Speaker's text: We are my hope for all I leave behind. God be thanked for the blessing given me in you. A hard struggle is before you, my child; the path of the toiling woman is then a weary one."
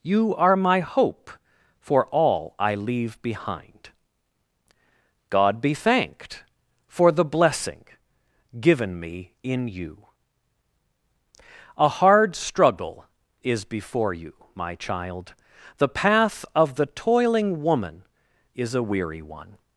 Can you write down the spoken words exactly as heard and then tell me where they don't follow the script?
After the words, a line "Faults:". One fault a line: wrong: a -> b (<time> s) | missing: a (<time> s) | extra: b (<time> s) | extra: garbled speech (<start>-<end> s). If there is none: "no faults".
You are my hope for all I leave behind. God be thanked for the blessing given me in you. A hard struggle is before you, my child; the path of the toiling woman is a weary one."
Faults:
wrong: We -> You (0.0 s)
missing: then (18.8 s)